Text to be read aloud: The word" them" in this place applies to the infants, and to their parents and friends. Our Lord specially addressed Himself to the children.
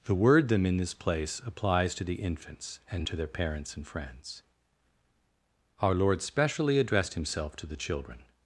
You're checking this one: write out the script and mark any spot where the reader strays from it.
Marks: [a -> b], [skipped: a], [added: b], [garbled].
The word" them" in this place applies to the infants, and to their parents and friends. Our Lord specially addressed Himself to the children.